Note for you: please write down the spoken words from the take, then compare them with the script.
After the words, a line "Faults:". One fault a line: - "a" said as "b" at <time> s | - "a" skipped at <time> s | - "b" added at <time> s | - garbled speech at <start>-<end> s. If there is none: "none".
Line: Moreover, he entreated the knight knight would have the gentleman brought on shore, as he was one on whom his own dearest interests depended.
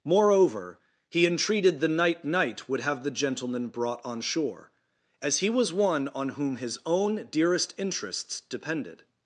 Moreover, he entreated the knight knight would have the gentleman brought on shore, as he was one on whom his own dearest interests depended.
Faults:
none